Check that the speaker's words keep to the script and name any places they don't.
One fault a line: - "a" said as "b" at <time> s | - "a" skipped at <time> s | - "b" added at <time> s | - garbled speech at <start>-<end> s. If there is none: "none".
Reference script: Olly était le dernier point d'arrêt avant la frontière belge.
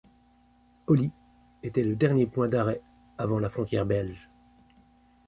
none